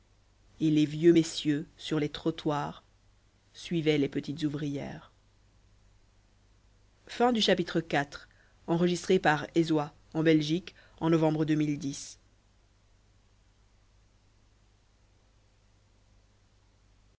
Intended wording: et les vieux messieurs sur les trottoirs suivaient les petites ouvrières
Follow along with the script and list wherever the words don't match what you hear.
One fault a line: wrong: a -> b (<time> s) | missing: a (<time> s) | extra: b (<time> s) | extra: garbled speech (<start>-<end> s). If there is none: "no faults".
no faults